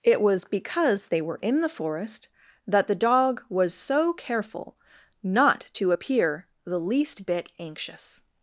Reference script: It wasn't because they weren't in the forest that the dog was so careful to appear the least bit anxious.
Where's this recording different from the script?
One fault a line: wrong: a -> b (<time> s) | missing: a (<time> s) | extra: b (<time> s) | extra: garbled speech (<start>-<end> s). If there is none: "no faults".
wrong: wasn't -> was (0.2 s)
wrong: weren't -> were (1.2 s)
extra: not (5.2 s)